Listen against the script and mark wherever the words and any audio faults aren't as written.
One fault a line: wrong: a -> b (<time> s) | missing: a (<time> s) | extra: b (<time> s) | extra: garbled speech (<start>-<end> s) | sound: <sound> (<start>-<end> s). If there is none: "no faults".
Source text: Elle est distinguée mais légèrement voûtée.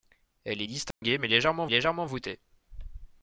sound: dropout (0.9-1.0 s)
extra: légèrement (1.7 s)